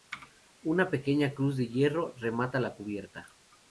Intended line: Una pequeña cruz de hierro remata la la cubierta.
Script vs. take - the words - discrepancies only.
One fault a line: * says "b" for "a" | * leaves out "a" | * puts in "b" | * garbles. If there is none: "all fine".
* leaves out "la"